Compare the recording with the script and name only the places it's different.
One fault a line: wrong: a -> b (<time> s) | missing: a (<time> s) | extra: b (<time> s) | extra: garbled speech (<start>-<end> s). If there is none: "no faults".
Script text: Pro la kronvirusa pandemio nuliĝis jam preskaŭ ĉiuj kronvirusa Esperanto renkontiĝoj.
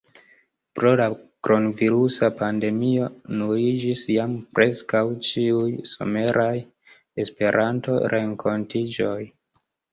wrong: kronvirusa -> someraj (5.9 s)